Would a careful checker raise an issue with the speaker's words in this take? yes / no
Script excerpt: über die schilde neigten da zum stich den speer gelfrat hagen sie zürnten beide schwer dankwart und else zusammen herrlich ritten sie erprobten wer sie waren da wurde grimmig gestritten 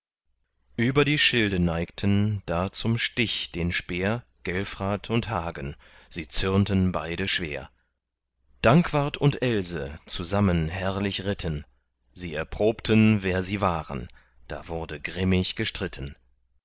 yes